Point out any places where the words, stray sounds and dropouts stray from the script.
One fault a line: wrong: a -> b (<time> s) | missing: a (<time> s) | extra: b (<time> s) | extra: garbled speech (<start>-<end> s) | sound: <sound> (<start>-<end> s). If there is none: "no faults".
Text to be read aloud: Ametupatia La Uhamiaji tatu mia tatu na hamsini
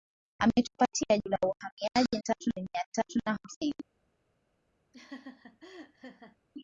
sound: laugh (4.9-6.4 s)